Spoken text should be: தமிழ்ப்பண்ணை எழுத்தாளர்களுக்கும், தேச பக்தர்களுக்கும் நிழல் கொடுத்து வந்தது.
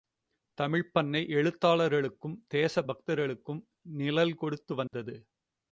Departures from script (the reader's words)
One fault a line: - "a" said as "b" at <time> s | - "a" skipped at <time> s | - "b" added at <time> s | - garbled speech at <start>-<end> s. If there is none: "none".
none